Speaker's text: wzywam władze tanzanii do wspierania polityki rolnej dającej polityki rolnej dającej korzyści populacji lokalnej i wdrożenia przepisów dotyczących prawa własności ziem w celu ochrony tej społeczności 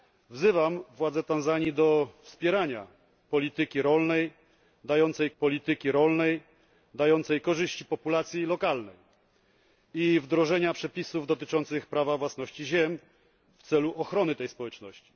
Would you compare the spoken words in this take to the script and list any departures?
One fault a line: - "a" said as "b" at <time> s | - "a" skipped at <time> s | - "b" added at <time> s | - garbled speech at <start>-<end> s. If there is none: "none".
none